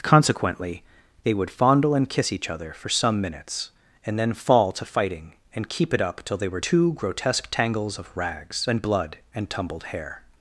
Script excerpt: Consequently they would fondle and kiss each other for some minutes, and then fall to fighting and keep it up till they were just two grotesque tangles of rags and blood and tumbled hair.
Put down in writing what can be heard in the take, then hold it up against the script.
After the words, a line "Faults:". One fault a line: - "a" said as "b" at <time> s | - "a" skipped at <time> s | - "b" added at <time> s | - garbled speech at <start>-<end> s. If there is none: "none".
Consequently they would fondle and kiss each other for some minutes, and then fall to fighting and keep it up till they were two grotesque tangles of rags and blood and tumbled hair.
Faults:
- "just" skipped at 6.6 s